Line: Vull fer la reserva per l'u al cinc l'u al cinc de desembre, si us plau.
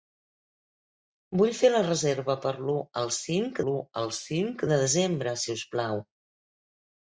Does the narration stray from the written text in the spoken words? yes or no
no